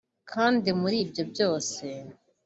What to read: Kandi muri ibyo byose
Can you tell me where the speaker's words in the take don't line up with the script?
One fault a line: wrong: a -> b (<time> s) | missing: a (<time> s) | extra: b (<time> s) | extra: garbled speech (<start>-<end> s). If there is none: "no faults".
no faults